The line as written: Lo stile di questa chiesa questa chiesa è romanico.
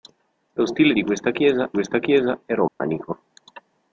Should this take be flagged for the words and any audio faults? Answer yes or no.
yes